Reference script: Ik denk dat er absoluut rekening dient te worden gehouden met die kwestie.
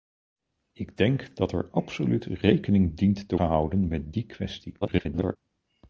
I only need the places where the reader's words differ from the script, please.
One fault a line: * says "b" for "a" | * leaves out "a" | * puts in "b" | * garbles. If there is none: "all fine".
* leaves out "worden"
* garbles